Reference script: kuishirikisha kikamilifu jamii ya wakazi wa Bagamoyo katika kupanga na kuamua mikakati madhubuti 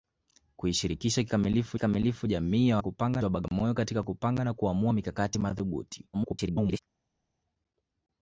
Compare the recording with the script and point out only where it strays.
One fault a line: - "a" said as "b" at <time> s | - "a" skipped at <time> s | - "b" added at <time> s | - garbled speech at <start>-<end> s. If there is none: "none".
- "kikamilifu" added at 1.7 s
- "wakazi" said as "kupanga" at 2.8 s
- garbled speech at 6.1-6.8 s